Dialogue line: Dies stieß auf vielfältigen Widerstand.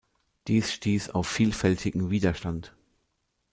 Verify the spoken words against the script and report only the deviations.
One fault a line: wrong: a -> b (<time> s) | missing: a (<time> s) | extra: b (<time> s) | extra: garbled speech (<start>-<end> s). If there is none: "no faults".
no faults